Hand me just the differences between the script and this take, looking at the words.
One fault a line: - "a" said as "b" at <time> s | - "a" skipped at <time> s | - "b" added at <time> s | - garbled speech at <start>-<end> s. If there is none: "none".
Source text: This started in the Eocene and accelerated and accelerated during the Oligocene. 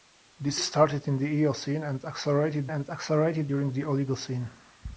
none